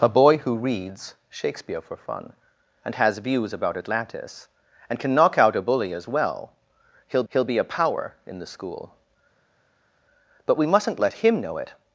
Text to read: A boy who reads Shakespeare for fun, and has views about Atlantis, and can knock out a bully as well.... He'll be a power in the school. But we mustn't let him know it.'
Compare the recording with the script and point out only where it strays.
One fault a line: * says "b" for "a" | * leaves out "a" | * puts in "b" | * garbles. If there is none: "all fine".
* puts in "he'll"